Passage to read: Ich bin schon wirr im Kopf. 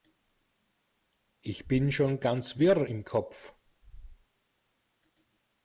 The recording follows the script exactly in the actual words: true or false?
false